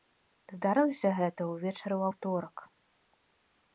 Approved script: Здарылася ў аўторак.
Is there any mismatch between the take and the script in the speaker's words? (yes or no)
yes